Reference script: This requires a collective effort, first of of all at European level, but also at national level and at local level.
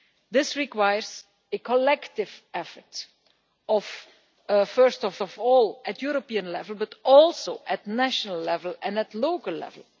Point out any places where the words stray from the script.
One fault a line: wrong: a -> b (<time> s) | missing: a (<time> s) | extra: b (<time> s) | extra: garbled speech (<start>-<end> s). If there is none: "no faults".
no faults